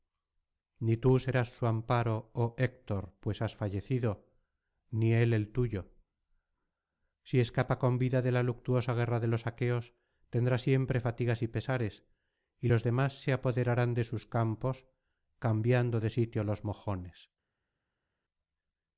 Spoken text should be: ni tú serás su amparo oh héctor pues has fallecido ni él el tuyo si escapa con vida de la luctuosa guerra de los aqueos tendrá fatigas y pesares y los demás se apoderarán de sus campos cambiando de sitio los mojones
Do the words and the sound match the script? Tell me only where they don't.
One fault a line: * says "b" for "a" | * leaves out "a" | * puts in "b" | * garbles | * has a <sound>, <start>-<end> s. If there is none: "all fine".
* puts in "siempre"